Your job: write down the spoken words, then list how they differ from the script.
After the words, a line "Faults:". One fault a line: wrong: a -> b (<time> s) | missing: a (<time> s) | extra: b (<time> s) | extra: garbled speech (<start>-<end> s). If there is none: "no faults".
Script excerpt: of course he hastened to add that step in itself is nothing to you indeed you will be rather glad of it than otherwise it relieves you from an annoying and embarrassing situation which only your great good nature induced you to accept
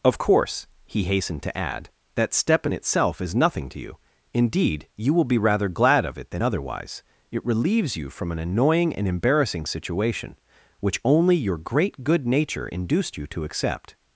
of course he hastened to add that step in itself is nothing to you indeed you will be rather glad of it than otherwise it relieves you from an annoying and embarrassing situation which only your great good nature induced you to accept
Faults:
no faults